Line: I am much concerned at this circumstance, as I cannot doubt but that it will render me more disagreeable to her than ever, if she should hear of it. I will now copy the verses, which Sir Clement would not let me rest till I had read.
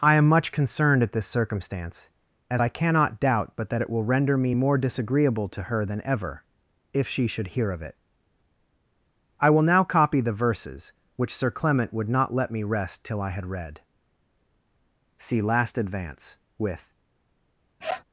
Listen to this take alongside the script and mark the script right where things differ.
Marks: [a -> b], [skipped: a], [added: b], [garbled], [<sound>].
I am much concerned at this circumstance, as I cannot doubt but that it will render me more disagreeable to her than ever, if she should hear of it. I will now copy the verses, which Sir Clement would not let me rest till I had read. [added: See last advance with] [sniff]